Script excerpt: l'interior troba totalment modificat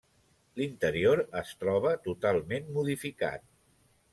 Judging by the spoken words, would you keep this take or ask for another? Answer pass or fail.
fail